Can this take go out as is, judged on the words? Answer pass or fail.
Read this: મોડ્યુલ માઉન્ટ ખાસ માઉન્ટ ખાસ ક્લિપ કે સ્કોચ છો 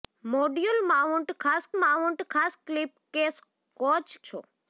pass